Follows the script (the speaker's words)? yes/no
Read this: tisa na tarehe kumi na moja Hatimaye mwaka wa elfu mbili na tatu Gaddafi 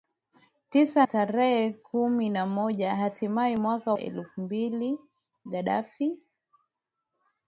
no